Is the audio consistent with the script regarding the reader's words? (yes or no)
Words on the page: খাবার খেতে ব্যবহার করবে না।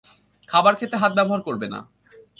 no